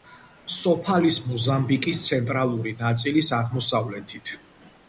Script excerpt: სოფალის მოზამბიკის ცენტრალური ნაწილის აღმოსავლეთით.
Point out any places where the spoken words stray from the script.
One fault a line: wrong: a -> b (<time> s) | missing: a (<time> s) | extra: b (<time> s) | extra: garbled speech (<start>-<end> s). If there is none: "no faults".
no faults